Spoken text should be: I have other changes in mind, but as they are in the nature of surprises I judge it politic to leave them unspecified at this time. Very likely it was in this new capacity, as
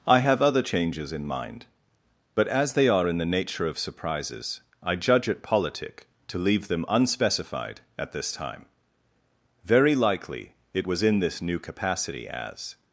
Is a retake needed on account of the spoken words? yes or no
no